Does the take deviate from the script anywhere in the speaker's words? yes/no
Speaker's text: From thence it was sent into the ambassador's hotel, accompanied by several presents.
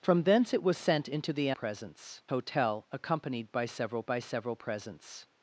yes